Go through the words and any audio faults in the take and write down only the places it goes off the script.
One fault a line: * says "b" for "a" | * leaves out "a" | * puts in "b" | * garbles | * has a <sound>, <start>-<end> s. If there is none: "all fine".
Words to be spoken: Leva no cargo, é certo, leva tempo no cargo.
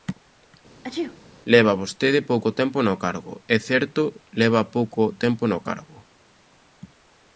* has a sneeze, 0.8-1.2 s
* puts in "vostede pouco tempo"
* puts in "pouco"